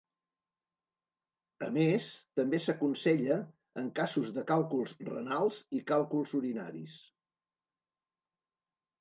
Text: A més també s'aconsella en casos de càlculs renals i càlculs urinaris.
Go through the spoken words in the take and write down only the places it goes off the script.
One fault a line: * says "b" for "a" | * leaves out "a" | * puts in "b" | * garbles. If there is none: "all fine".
all fine